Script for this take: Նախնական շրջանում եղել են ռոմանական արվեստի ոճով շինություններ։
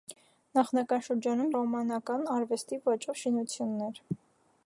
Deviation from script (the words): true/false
true